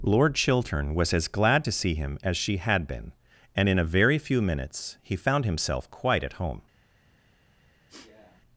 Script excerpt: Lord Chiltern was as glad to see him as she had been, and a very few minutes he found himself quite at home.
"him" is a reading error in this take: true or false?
false